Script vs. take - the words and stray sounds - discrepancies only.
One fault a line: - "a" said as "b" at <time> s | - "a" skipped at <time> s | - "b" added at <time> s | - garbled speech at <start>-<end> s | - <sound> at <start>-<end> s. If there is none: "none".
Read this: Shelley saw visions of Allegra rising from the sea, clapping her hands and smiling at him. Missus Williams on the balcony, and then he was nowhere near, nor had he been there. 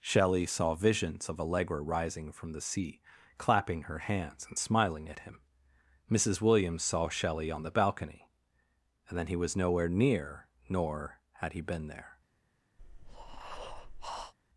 - "saw Shelley" added at 6.8 s
- breath at 12.8-14.3 s